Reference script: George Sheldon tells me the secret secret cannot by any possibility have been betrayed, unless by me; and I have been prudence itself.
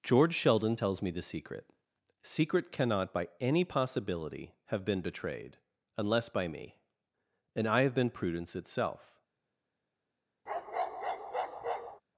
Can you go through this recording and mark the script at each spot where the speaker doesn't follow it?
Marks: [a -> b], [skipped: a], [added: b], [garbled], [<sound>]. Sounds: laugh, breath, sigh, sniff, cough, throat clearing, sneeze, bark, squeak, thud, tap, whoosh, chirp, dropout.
George Sheldon tells me the secret secret cannot by any possibility have been betrayed, unless by me; and I have been prudence itself. [bark]